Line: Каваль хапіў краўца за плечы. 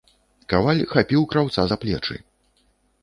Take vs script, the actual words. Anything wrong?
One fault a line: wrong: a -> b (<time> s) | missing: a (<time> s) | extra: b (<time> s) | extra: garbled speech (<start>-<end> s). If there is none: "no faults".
no faults